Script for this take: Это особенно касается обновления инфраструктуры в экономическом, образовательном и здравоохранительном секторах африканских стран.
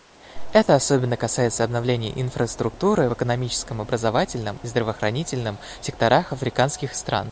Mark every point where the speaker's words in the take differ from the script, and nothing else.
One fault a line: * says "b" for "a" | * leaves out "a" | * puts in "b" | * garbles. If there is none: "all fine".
all fine